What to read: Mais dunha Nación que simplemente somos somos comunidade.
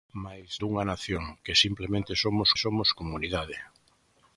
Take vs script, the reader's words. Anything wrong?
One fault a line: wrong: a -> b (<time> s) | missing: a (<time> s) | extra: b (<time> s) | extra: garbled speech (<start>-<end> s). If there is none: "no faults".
no faults